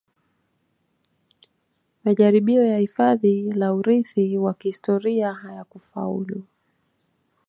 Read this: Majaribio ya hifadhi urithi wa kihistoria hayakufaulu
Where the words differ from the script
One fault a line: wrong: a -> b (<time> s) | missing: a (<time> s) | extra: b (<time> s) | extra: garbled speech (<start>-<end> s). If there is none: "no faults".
extra: la (3.5 s)